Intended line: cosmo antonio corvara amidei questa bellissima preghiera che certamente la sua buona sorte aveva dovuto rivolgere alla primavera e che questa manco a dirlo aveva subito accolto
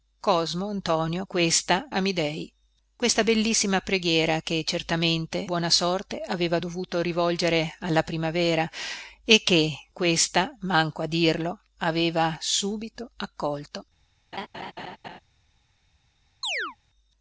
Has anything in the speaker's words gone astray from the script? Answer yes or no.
yes